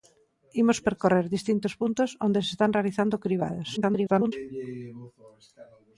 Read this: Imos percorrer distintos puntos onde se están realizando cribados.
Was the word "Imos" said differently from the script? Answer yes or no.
no